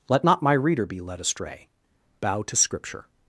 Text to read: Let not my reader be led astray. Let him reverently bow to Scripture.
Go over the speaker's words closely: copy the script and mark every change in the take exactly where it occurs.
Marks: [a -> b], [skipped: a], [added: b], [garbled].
Let not my reader be led astray. [skipped: Let him reverently] bow to Scripture.